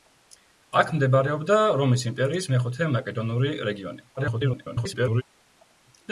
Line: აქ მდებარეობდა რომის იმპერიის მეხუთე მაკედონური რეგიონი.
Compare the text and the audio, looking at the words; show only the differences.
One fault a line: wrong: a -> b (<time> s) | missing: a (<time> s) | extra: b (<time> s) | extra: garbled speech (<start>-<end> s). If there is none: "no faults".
extra: garbled speech (4.2-5.2 s)